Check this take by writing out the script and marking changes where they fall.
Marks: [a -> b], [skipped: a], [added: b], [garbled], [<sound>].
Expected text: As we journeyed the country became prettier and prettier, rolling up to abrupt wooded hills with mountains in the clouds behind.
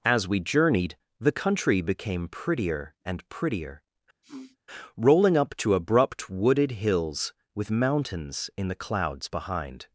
As we journeyed the country became prettier and prettier, [sniff] rolling up to abrupt wooded hills with mountains in the clouds behind.